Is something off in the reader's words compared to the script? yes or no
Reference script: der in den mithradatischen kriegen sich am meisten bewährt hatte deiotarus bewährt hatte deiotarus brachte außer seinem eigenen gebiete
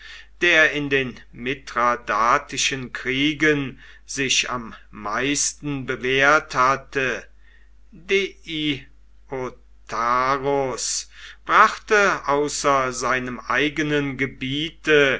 yes